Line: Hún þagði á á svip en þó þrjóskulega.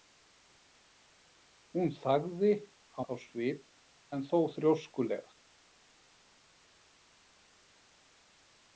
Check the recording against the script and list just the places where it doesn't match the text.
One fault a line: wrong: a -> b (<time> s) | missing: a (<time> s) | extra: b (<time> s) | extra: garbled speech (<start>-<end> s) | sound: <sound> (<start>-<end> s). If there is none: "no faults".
no faults